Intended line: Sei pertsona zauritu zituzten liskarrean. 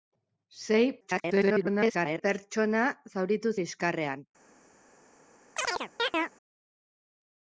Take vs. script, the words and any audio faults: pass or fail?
fail